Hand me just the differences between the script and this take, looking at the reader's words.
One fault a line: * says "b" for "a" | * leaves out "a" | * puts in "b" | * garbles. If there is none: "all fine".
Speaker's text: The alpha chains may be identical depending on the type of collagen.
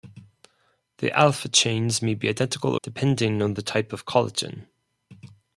all fine